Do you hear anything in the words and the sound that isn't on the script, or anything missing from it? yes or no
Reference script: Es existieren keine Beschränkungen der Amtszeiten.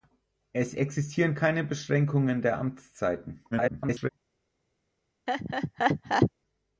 yes